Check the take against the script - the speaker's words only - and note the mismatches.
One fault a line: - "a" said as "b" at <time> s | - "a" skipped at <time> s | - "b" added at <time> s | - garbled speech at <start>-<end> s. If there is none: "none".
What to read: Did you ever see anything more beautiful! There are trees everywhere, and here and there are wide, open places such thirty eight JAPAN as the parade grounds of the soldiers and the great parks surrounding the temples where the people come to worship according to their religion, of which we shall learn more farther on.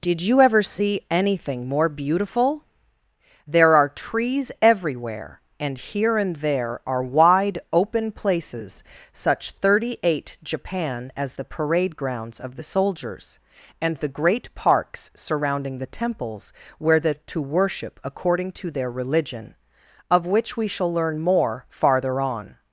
- "people come" skipped at 17.1 s